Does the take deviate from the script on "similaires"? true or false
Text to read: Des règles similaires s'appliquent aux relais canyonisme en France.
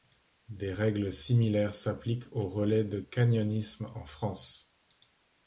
false